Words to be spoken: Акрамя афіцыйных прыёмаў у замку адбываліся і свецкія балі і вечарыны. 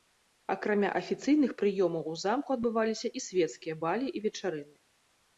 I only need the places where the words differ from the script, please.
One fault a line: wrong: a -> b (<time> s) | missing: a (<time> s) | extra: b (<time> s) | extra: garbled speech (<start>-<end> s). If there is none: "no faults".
no faults